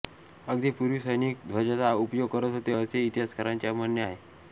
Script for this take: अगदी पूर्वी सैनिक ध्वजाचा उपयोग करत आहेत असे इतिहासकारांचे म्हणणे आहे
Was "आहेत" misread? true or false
true